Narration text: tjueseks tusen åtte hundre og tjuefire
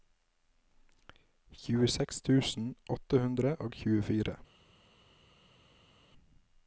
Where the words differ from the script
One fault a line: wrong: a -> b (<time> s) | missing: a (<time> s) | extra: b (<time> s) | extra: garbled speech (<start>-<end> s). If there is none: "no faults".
no faults